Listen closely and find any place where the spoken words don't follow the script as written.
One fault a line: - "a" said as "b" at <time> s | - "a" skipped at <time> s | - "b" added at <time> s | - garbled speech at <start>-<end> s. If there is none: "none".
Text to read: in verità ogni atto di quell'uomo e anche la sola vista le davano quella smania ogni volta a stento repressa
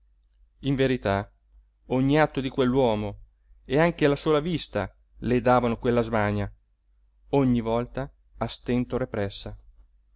none